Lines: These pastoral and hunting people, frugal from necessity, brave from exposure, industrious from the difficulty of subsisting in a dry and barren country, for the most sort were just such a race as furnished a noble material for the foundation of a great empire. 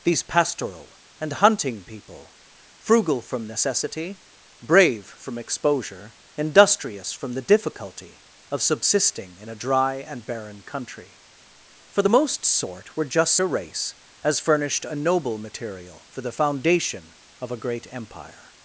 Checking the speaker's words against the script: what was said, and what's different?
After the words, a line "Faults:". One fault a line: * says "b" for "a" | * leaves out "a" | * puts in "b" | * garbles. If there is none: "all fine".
These pastoral and hunting people, frugal from necessity, brave from exposure, industrious from the difficulty of subsisting in a dry and barren country, for the most sort were just a race as furnished a noble material for the foundation of a great empire.
Faults:
* leaves out "such"